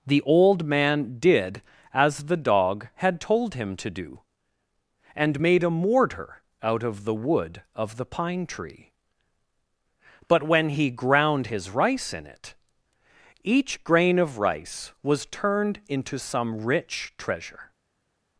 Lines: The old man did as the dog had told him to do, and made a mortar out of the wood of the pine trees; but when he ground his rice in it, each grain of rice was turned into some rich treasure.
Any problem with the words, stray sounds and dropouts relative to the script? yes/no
yes